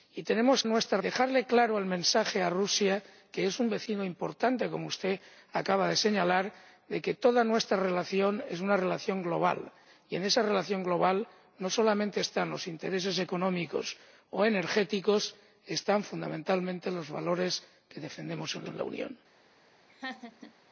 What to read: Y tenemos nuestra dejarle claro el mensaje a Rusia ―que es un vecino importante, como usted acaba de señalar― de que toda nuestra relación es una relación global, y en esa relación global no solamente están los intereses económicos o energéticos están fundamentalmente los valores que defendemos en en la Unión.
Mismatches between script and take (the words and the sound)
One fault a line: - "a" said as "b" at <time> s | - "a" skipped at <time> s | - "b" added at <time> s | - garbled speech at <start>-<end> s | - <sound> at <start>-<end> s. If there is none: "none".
- laugh at 19.9-20.5 s